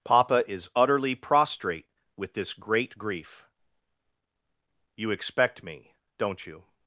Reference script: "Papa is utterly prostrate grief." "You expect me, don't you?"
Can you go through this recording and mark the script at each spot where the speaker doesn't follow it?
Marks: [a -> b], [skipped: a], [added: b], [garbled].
"Papa is utterly prostrate [added: with this great] grief." "You expect me, don't you?"